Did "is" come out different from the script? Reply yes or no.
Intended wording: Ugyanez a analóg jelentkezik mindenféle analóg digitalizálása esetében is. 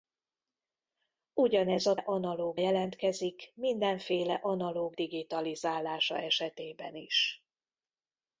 no